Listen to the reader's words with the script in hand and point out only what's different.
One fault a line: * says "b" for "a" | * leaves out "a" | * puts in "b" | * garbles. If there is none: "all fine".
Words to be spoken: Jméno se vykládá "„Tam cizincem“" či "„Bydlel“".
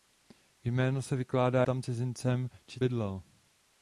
all fine